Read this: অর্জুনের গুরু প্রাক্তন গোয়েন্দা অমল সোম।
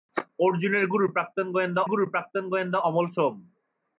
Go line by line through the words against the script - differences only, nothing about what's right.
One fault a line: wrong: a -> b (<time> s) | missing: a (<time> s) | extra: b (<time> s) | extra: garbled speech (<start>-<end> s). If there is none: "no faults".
extra: গুরু প্রাক্তন গোয়েন্দা (1.9 s)